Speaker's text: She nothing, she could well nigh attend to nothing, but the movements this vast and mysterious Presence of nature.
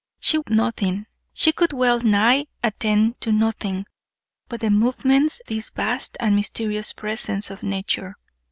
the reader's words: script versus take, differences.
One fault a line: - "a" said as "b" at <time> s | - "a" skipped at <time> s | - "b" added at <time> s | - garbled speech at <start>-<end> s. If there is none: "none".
none